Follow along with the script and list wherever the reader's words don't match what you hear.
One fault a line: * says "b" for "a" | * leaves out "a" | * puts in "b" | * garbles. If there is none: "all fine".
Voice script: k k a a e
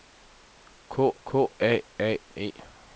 all fine